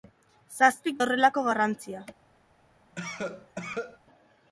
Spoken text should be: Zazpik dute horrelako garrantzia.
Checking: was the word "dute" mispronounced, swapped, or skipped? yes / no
yes